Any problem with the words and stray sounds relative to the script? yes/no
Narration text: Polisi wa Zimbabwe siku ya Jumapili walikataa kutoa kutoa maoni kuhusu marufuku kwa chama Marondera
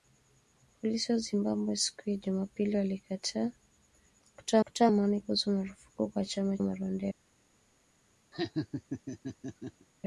yes